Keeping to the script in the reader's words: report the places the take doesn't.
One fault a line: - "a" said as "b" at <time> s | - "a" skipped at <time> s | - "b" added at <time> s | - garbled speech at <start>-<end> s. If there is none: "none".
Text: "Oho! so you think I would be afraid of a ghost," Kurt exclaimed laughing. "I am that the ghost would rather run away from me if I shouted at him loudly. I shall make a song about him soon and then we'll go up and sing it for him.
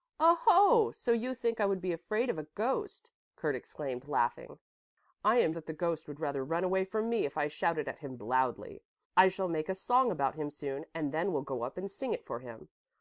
none